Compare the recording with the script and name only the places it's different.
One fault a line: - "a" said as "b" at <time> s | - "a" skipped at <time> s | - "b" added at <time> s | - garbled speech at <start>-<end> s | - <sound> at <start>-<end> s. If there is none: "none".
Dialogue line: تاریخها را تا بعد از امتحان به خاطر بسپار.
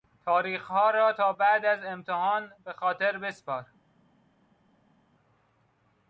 none